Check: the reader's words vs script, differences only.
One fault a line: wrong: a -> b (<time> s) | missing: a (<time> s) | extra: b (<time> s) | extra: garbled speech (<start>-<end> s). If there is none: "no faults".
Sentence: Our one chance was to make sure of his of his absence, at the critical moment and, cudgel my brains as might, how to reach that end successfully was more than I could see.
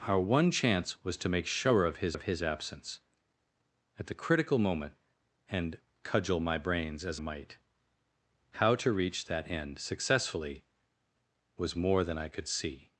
no faults